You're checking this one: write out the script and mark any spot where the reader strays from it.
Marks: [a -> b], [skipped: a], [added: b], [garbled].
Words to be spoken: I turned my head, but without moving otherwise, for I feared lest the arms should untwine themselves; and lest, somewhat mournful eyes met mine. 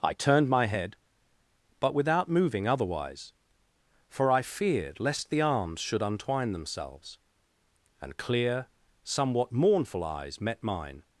I turned my head, but without moving otherwise, for I feared lest the arms should untwine themselves; and [lest, -> clear] somewhat mournful eyes met mine.